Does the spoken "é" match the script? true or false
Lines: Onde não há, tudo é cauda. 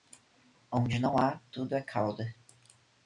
true